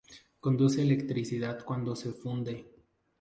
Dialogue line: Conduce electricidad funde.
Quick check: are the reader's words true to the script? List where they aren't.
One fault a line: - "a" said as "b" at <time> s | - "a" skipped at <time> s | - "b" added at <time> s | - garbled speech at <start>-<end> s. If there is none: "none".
- "cuando se" added at 1.6 s